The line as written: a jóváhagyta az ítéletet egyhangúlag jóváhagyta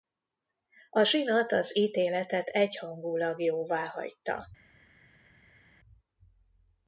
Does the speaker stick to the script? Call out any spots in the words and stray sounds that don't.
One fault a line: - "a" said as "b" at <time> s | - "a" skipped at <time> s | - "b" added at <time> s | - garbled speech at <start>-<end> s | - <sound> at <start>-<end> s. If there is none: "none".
- "jóváhagyta" said as "zsinat" at 1.0 s